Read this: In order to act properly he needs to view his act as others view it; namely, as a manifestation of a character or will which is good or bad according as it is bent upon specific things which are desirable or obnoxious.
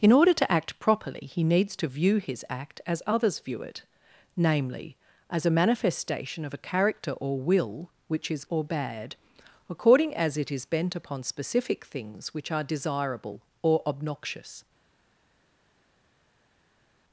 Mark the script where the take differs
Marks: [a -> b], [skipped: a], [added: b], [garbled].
In order to act properly he needs to view his act as others view it; namely, as a manifestation of a character or will which is [skipped: good] or bad according as it is bent upon specific things which are desirable or obnoxious.